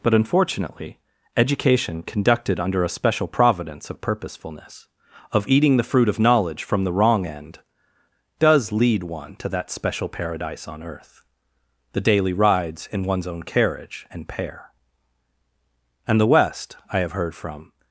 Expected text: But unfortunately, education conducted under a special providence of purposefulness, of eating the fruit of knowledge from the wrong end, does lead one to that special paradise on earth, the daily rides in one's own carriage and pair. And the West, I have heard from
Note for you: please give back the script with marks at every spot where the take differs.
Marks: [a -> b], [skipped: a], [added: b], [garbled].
But unfortunately, education conducted under a special providence of purposefulness, of eating the fruit of knowledge from the wrong end, does lead one to that special paradise on earth, the daily rides in one's own carriage and pair. And the West, I have heard from